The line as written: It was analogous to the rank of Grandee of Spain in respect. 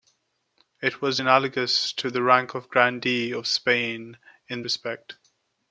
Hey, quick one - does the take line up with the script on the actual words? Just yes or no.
yes